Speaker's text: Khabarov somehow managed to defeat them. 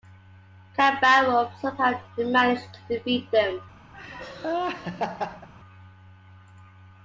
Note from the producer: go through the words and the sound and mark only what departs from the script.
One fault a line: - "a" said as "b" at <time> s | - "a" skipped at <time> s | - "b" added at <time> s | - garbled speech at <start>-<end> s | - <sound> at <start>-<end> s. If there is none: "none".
- laugh at 3.9-5.5 s